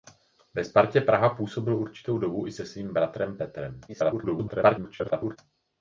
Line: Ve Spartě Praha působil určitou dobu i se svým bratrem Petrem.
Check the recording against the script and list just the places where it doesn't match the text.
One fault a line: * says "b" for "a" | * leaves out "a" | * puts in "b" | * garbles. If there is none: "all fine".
* garbles